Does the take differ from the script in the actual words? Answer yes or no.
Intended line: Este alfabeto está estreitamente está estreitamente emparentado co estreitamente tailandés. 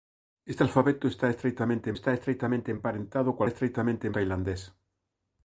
no